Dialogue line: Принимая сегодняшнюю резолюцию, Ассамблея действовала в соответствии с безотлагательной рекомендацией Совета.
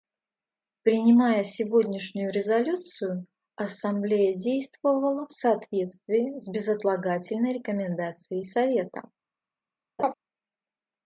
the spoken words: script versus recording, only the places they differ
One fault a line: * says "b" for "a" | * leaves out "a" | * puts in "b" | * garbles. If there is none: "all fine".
all fine